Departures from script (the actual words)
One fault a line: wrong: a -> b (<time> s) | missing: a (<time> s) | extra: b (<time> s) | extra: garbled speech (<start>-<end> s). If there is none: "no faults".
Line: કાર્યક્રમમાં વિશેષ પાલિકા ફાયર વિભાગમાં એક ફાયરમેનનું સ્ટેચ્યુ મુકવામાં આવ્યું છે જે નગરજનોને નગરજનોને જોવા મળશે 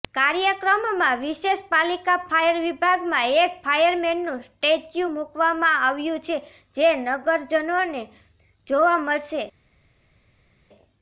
missing: નગરજનોને (8.0 s)